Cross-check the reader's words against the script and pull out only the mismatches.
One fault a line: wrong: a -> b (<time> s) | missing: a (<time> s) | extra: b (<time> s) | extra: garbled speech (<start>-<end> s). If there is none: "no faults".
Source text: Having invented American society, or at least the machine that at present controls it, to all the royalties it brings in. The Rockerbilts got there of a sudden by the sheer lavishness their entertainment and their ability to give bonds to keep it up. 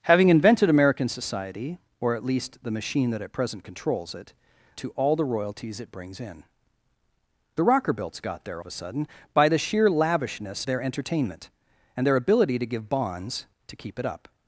no faults